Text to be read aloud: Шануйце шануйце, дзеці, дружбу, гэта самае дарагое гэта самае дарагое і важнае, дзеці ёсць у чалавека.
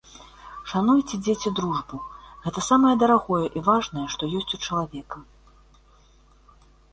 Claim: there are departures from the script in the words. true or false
true